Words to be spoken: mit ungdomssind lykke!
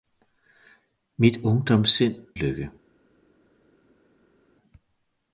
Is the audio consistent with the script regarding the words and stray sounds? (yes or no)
yes